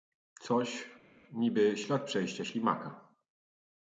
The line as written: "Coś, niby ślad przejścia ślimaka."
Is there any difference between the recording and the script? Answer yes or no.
no